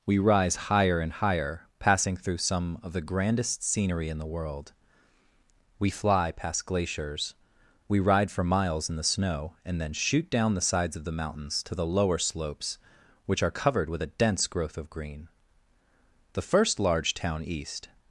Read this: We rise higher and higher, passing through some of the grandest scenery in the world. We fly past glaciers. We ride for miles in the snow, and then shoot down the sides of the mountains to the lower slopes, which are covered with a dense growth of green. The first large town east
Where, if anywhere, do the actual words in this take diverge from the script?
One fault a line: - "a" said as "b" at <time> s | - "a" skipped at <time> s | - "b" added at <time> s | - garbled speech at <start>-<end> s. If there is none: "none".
none